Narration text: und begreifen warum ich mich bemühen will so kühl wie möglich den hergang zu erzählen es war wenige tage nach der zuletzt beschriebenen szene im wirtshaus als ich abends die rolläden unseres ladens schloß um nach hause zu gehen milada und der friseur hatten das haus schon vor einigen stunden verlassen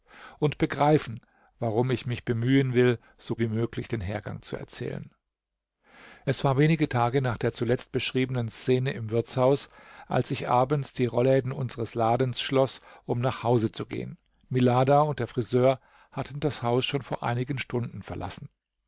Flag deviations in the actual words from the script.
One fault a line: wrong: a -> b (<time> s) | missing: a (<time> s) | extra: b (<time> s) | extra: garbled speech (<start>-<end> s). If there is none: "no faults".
missing: kühl (3.4 s)